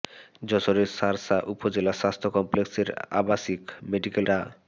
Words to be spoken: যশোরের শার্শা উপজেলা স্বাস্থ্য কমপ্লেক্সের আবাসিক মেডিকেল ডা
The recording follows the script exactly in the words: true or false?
true